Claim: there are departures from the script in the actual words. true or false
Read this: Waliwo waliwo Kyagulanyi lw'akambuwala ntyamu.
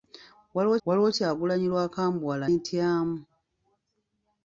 false